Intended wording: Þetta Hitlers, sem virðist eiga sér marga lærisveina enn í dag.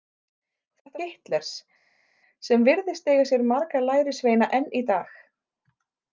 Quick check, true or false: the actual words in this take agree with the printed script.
true